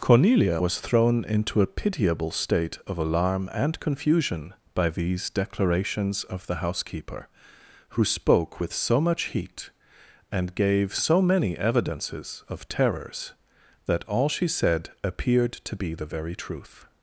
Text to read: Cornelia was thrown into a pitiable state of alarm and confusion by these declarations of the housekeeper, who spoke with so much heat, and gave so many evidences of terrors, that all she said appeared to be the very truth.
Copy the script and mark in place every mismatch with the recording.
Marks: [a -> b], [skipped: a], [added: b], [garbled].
Cornelia was thrown into a pitiable state of alarm and confusion by these declarations of the housekeeper, who spoke with so much heat, and gave so many evidences of terrors, that all she said appeared to be the very truth.